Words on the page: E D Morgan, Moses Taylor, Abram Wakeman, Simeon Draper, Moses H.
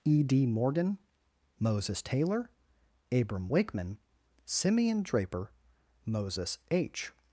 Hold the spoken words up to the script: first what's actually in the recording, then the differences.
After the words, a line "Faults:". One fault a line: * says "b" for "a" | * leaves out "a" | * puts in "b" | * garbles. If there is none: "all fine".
E D Morgan, Moses Taylor, Abram Wakeman, Simeon Draper, Moses H.
Faults:
all fine